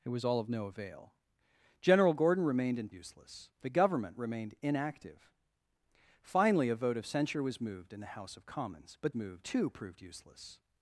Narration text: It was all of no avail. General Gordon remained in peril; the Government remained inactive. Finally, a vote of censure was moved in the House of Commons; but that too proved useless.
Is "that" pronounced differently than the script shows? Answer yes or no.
yes